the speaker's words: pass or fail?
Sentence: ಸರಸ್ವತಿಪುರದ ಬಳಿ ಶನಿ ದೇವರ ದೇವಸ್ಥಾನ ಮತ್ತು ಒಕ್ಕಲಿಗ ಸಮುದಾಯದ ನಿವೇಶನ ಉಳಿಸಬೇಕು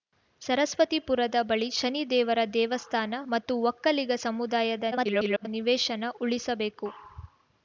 fail